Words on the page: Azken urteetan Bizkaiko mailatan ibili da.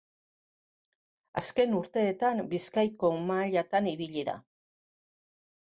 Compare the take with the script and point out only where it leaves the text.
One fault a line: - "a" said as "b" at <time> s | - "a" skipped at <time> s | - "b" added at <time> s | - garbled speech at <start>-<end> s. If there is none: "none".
none